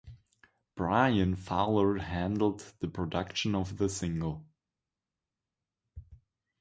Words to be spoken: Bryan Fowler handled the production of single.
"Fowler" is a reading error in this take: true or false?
false